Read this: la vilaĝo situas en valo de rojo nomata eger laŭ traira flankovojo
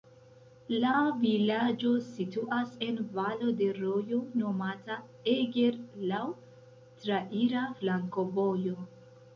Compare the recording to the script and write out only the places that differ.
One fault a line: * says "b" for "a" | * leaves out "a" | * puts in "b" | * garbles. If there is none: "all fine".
all fine